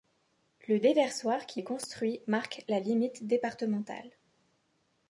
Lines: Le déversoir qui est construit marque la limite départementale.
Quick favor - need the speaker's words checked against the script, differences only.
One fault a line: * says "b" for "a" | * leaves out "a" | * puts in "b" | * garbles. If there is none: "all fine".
all fine